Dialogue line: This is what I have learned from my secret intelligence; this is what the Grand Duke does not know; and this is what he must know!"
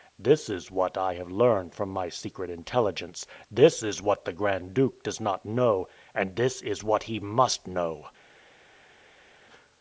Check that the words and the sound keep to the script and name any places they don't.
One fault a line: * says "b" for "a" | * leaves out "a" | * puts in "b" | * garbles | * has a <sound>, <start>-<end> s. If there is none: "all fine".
all fine